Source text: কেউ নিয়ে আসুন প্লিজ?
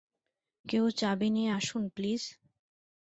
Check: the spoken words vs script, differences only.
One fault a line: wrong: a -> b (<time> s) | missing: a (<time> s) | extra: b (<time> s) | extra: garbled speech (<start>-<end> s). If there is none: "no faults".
extra: চাবি (1.0 s)